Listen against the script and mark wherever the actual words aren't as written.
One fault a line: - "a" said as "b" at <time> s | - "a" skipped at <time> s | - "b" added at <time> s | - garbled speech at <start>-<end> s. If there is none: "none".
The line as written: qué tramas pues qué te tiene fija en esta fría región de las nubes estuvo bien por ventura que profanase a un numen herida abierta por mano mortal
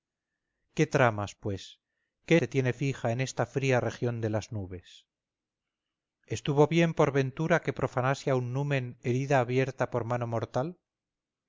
none